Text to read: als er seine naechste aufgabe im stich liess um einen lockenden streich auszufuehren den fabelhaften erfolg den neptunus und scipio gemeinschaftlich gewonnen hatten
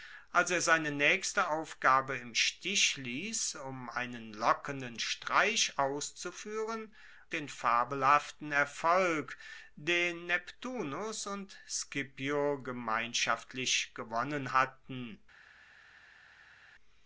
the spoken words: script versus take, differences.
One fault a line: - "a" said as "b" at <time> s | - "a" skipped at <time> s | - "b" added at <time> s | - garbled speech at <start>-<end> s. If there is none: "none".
none